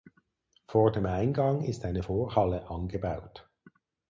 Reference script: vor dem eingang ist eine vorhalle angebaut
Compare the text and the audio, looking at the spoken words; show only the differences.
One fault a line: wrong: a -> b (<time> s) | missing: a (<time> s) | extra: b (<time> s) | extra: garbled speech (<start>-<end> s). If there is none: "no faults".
no faults